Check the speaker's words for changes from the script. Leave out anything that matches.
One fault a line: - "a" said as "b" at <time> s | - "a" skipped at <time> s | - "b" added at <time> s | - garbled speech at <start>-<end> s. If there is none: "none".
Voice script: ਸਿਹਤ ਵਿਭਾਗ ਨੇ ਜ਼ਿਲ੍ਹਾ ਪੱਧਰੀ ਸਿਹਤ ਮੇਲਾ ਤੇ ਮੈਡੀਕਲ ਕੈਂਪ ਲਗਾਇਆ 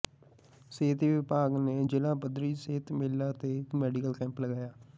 none